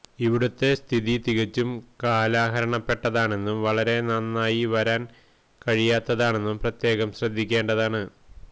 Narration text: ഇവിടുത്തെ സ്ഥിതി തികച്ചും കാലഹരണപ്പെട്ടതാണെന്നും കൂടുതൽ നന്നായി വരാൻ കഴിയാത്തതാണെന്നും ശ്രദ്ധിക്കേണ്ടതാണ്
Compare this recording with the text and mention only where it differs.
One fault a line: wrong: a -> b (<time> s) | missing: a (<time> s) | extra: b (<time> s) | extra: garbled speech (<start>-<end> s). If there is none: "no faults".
wrong: കൂടുതൽ -> വളരെ (3.6 s)
extra: പ്രത്യേകം (6.6 s)